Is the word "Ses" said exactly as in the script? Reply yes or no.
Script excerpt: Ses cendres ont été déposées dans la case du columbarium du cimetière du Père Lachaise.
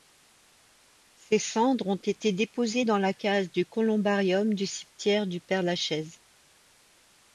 yes